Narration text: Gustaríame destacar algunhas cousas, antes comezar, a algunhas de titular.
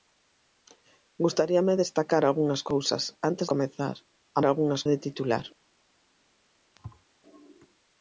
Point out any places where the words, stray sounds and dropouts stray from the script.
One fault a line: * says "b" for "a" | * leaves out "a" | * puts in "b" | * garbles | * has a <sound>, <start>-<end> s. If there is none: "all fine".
* has a thud, 6.8-7.0 s